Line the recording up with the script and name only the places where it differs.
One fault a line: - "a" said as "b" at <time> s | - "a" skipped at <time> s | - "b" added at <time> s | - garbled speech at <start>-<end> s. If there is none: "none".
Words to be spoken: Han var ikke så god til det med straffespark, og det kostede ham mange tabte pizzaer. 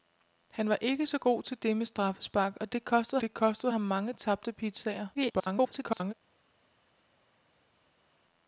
- "det kostede" added at 3.2 s
- garbled speech at 5.1-6.1 s